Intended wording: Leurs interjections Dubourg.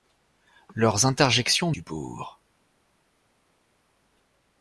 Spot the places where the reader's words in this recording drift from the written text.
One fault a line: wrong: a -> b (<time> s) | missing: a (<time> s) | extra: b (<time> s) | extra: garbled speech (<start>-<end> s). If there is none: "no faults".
no faults